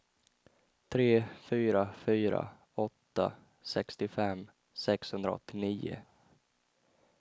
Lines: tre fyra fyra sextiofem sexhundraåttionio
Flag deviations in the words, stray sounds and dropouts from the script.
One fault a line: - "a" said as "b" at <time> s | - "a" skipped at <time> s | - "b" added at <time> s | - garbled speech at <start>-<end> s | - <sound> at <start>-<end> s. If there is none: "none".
- "åtta" added at 2.8 s